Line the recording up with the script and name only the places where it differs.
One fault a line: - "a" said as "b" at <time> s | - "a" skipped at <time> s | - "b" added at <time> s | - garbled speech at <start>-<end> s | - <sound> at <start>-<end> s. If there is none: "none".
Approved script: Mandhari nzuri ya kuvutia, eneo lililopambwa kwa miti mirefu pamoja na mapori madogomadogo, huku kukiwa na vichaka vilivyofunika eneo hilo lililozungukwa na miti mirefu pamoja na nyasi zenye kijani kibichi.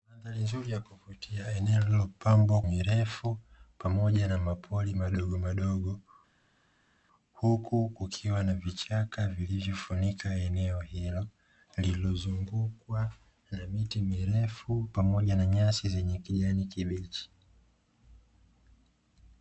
- "kwa miti" skipped at 2.6 s